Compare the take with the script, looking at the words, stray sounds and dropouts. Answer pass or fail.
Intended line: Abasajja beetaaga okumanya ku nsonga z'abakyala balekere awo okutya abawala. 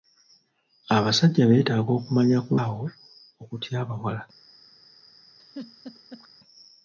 fail